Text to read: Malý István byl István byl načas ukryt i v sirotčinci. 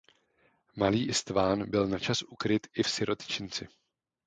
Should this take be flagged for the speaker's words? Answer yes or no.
yes